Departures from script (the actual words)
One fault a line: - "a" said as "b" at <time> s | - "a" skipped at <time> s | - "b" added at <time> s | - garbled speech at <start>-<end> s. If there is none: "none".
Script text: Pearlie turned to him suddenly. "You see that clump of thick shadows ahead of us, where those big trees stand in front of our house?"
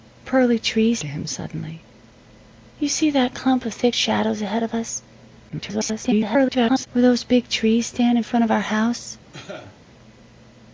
- "turned" said as "trees" at 0.6 s
- garbled speech at 5.5-6.9 s